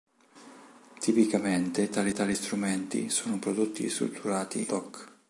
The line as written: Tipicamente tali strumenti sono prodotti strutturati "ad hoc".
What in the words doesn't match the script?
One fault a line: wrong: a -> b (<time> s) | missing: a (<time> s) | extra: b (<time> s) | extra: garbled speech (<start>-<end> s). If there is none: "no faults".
extra: tali (2.1 s)
missing: ad (4.7 s)